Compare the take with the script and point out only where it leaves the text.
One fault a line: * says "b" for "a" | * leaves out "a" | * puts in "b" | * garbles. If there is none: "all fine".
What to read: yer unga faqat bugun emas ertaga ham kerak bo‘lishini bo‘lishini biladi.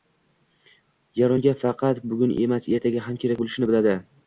* leaves out "bo‘lishini"